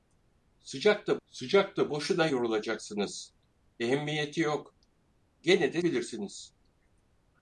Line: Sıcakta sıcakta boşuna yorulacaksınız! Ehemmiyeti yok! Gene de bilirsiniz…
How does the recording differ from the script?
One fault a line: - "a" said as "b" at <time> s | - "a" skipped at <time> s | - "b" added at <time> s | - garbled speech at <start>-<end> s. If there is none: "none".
none